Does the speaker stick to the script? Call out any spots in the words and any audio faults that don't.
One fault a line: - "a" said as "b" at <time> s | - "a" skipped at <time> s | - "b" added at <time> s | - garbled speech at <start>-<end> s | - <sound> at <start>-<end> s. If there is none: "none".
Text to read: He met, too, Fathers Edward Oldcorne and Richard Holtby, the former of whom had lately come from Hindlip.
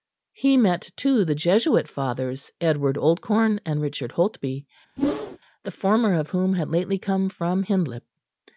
- "the Jesuit" added at 1.2 s
- whoosh at 5.0-5.4 s